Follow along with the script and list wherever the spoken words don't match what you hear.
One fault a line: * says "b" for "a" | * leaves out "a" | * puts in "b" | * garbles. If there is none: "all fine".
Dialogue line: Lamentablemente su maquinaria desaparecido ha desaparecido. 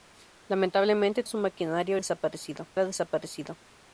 all fine